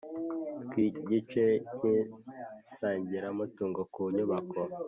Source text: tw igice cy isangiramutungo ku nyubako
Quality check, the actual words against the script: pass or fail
pass